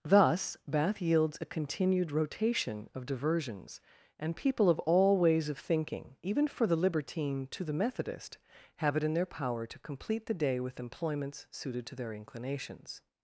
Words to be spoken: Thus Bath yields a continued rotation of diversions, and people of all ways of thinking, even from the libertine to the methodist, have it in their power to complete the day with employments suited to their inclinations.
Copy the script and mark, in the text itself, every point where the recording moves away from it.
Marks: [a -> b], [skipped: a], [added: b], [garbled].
Thus Bath yields a continued rotation of diversions, and people of all ways of thinking, even [from -> for] the libertine to the methodist, have it in their power to complete the day with employments suited to their inclinations.